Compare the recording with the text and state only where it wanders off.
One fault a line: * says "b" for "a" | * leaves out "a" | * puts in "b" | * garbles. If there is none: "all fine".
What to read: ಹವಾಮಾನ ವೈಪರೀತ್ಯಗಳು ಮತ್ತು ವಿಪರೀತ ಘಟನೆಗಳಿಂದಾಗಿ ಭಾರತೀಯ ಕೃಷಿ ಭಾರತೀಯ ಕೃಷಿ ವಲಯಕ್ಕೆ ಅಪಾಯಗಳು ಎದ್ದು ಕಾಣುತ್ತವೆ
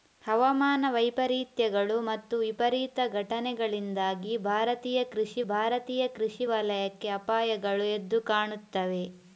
all fine